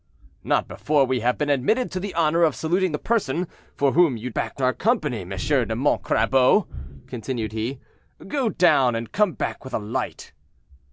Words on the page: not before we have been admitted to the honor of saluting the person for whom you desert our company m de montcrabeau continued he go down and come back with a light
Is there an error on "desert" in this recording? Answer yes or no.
yes